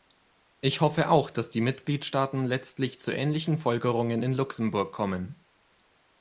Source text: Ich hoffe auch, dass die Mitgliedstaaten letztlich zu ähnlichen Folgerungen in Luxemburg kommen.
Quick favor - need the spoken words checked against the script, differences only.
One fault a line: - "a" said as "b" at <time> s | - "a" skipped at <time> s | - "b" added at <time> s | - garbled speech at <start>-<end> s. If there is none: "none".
none